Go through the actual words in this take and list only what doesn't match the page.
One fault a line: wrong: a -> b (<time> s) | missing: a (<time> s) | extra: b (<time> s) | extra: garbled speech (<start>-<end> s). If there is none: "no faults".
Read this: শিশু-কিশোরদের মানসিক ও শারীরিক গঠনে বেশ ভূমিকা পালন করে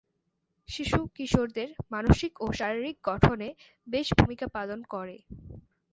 no faults